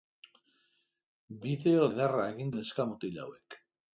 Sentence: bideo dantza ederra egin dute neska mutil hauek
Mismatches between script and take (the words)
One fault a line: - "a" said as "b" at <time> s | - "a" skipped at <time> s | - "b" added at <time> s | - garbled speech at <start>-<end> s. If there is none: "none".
- "dantza" skipped at 1.8 s
- "dute" skipped at 2.6 s